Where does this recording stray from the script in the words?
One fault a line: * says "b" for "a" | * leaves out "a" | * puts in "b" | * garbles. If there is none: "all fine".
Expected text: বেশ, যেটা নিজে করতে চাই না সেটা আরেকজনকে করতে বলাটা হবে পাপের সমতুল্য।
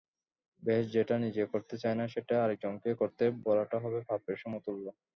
all fine